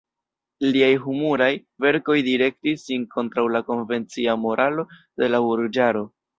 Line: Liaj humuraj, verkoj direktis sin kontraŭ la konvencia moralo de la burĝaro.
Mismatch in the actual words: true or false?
false